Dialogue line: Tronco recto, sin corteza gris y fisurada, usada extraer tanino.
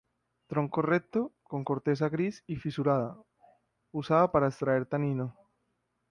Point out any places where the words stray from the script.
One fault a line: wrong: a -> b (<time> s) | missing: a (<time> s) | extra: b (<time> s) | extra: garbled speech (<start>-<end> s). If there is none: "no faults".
wrong: sin -> con (1.4 s)
extra: para (4.3 s)